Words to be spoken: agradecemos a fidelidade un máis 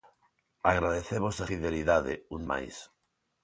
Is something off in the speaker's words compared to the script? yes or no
no